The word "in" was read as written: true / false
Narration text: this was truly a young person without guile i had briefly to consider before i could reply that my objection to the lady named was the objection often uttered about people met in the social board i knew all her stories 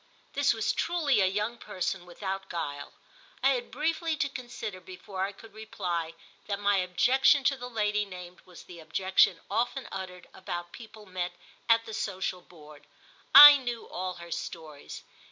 false